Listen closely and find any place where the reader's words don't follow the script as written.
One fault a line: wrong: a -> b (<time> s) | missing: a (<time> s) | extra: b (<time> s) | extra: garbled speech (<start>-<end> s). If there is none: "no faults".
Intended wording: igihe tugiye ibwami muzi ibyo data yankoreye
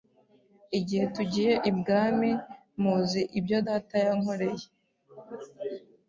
no faults